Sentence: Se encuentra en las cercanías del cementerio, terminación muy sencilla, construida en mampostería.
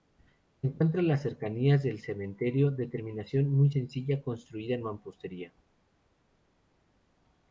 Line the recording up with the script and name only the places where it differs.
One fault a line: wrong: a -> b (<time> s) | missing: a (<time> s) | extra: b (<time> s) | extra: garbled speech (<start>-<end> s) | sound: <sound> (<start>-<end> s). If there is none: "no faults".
extra: de (2.7 s)